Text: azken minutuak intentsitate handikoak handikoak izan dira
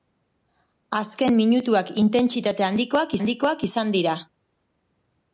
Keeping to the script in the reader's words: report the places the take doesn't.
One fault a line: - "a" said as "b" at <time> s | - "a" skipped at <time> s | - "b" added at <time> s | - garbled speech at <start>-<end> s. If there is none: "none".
none